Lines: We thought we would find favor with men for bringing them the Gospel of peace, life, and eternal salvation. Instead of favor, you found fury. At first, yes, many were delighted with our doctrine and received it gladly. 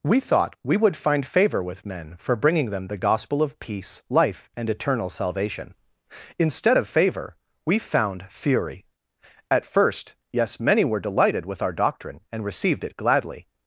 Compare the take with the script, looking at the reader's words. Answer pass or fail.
fail